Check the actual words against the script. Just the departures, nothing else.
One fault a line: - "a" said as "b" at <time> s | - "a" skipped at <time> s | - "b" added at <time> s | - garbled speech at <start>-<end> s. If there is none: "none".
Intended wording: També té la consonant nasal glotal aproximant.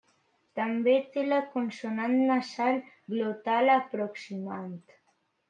none